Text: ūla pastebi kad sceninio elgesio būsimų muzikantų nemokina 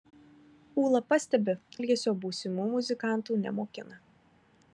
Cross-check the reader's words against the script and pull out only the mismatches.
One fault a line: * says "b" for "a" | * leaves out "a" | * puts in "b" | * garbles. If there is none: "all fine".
* leaves out "kad sceninio"